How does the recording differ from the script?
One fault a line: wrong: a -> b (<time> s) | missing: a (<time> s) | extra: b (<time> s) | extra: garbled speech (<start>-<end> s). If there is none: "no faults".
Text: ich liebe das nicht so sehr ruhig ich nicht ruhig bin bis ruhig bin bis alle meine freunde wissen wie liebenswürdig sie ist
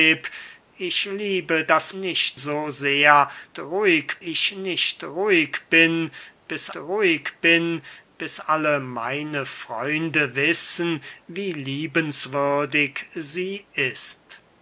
no faults